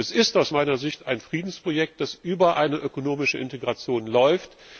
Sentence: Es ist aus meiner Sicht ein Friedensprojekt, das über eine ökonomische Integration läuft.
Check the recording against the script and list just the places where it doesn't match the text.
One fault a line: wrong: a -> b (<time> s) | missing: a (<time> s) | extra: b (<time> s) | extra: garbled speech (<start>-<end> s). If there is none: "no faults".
no faults